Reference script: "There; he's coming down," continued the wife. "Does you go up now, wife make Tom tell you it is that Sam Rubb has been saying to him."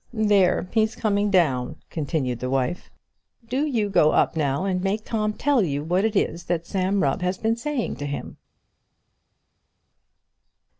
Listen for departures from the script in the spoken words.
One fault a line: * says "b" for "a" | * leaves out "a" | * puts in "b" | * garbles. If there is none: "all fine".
* says "Do" for "Does"
* says "and" for "wife"
* puts in "what"